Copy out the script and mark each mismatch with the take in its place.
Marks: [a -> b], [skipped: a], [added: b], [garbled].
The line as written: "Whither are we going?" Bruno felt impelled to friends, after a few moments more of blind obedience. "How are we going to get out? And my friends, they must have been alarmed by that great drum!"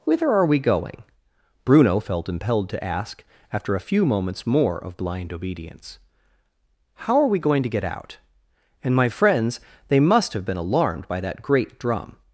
"Whither are we going?" Bruno felt impelled to [friends, -> ask] after a few moments more of blind obedience. "How are we going to get out? And my friends, they must have been alarmed by that great drum!"